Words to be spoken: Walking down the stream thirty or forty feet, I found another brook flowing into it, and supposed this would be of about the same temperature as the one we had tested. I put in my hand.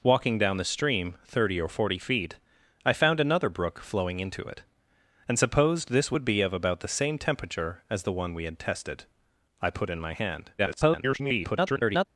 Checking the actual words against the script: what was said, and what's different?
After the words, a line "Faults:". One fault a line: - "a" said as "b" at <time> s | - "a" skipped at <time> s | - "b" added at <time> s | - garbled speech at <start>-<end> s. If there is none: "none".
Walking down the stream thirty or forty feet, I found another brook flowing into it, and supposed this would be of about the same temperature as the one we had tested. I put in my hand. [garbled]
Faults:
- garbled speech at 10.6-12.1 s